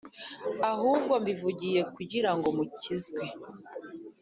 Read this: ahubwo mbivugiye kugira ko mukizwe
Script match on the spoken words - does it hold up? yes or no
no